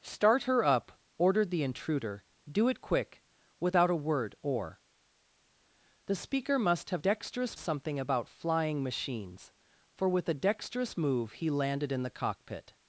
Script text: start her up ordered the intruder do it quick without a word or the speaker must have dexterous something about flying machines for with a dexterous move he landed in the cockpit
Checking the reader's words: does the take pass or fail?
pass